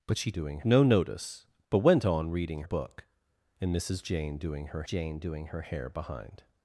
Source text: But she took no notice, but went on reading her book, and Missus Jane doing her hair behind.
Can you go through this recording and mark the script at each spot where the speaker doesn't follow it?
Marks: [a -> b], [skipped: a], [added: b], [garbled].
But she [took -> doing] no notice, but went on reading [skipped: her] book, and Missus Jane doing her [added: Jane doing her] hair behind.